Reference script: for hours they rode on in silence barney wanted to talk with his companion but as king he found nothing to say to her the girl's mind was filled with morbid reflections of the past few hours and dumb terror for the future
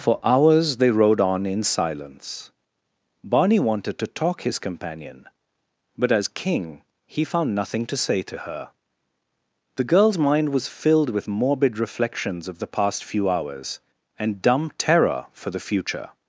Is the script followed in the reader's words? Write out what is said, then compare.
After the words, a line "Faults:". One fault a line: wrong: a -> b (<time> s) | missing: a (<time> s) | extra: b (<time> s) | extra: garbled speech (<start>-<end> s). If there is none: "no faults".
for hours they rode on in silence barney wanted to talk his companion but as king he found nothing to say to her the girl's mind was filled with morbid reflections of the past few hours and dumb terror for the future
Faults:
missing: with (4.4 s)